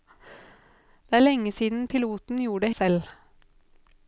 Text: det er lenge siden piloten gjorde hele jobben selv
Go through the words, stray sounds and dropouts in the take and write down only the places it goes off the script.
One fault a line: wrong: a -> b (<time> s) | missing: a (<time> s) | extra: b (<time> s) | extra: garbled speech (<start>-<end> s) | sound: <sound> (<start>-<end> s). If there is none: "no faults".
missing: hele jobben (2.7 s)